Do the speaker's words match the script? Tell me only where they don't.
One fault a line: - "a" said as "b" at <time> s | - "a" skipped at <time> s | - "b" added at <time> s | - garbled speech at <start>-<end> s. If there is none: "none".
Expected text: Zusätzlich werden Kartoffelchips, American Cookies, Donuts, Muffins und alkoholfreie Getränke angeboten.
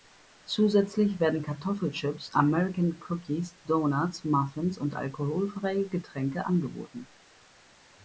none